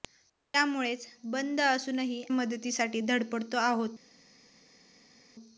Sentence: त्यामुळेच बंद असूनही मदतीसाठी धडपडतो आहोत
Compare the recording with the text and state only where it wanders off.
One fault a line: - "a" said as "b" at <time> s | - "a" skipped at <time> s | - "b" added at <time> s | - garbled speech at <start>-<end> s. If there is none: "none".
none